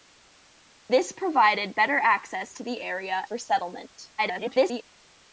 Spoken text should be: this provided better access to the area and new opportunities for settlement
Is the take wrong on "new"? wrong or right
wrong